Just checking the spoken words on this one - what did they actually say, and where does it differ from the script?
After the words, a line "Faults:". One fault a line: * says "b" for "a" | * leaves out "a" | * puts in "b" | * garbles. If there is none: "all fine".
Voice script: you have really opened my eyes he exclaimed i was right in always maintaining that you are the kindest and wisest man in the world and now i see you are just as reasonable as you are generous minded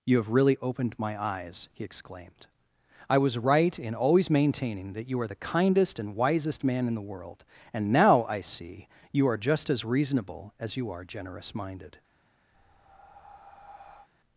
you have really opened my eyes he exclaimed i was right in always maintaining that you are the kindest and wisest man in the world and now i see you are just as reasonable as you are generous minded
Faults:
all fine